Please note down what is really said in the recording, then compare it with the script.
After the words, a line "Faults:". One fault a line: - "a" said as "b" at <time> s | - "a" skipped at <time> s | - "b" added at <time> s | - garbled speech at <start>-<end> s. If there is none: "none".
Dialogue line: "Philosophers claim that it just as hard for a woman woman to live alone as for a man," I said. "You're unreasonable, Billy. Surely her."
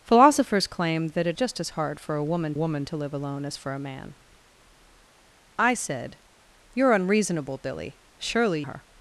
"Philosophers claim that it just as hard for a woman woman to live alone as for a man," I said. "You're unreasonable, Billy. Surely her."
Faults:
none